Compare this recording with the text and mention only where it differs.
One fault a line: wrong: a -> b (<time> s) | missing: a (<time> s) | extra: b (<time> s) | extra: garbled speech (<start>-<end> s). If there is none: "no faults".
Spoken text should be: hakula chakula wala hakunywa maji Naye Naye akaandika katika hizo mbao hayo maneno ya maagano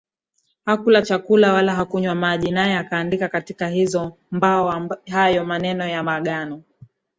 missing: Naye (2.8 s)